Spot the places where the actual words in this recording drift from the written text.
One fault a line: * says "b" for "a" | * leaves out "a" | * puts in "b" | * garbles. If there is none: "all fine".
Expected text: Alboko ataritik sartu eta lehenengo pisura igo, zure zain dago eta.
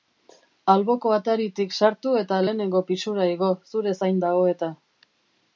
all fine